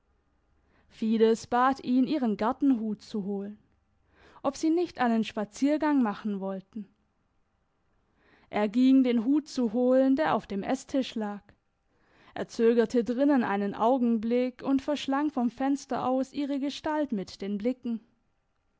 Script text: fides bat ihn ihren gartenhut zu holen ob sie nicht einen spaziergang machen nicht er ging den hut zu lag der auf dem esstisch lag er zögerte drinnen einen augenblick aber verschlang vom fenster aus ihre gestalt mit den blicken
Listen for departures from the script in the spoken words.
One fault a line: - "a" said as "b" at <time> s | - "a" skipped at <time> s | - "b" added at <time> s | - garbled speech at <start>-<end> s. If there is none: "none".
- "nicht" said as "wollten" at 6.4 s
- "lag" said as "holen" at 9.7 s
- "aber" said as "und" at 14.6 s